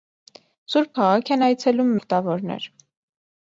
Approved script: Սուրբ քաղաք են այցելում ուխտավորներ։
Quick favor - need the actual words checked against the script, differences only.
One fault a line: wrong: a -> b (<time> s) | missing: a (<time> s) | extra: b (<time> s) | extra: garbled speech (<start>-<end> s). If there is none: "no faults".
no faults